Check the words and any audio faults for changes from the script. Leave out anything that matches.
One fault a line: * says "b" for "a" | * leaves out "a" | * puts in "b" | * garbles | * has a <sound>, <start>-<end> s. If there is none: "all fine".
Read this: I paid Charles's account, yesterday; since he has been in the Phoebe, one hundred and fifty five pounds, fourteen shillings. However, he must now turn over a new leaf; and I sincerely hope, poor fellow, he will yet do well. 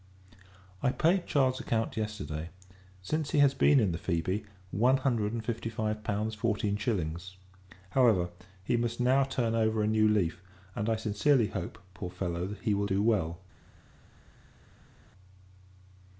* leaves out "yet"